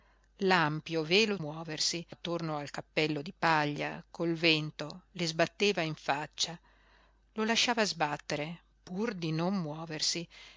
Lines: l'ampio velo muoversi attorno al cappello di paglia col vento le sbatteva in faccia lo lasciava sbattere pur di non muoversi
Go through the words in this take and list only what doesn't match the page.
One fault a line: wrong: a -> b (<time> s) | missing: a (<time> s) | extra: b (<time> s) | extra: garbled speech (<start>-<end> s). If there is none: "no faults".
no faults